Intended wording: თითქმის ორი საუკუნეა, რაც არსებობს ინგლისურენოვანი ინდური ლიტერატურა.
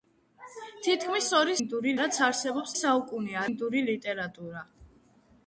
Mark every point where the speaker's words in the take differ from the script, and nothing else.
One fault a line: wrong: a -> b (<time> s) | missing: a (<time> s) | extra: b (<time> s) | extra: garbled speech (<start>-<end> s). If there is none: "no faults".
wrong: საუკუნეა -> ინდური (1.6 s)
wrong: ინგლისურენოვანი -> საუკუნეა (2.8 s)